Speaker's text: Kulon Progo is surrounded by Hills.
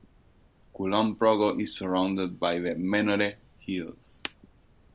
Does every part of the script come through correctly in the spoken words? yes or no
no